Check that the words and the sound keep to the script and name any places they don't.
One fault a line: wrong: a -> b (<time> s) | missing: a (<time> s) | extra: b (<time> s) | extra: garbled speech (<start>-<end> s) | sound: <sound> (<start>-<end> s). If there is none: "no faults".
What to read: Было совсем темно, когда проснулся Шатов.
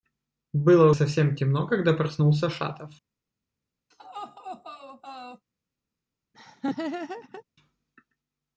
sound: laugh (3.9-5.5 s)
sound: laugh (6.3-7.4 s)